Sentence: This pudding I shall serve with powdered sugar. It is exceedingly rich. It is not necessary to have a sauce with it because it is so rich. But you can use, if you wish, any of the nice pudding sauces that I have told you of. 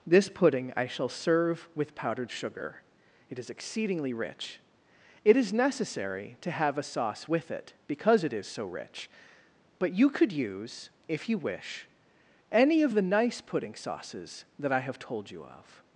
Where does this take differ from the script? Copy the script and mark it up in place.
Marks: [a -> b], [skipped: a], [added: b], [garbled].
This pudding I shall serve with powdered sugar. It is exceedingly rich. It is [skipped: not] necessary to have a sauce with it because it is so rich. But you [can -> could] use, if you wish, any of the nice pudding sauces that I have told you of.